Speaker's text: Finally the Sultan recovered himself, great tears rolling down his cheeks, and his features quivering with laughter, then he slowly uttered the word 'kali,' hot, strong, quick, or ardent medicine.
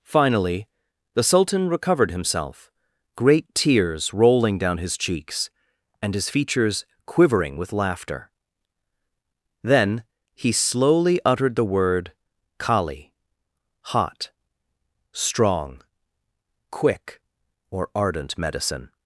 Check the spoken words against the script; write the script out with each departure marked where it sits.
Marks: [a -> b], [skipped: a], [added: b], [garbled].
Finally the Sultan recovered himself, great tears rolling down his cheeks, and his features quivering with laughter, then he slowly uttered the word 'kali,' hot, strong, quick, or ardent medicine.